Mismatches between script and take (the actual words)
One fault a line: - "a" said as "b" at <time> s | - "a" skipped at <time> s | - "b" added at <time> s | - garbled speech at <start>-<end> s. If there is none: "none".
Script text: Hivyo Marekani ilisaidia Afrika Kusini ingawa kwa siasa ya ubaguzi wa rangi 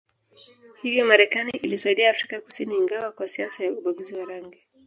none